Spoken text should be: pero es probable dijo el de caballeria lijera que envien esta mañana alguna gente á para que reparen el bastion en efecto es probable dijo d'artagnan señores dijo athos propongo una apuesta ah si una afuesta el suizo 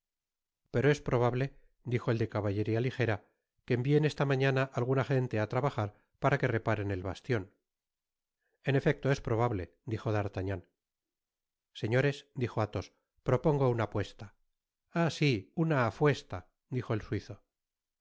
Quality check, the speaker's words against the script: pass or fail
fail